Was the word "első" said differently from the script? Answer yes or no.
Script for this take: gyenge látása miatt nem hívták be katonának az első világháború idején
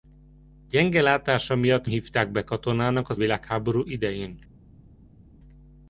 yes